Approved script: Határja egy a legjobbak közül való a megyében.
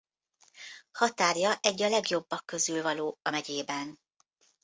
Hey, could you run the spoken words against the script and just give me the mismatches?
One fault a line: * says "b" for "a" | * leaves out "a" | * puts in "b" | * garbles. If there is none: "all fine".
all fine